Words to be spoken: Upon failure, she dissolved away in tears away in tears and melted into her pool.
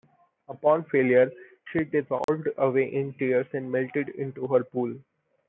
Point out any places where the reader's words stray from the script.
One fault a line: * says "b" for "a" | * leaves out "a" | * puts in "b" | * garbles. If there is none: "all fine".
* leaves out "away in tears"